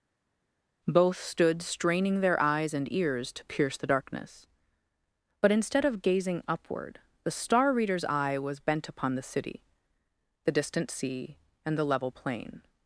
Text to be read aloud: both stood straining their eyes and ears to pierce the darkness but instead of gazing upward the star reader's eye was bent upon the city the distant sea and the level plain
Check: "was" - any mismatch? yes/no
no